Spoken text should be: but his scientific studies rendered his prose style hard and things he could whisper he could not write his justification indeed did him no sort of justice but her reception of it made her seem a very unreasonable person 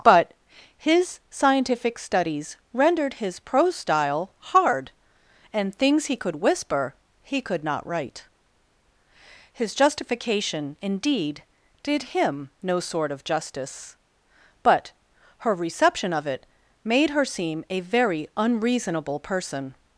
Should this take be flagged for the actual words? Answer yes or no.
no